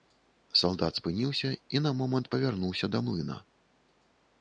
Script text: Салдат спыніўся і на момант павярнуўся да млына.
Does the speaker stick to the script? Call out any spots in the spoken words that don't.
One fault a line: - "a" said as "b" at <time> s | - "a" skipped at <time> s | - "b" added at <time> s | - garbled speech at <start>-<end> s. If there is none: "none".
none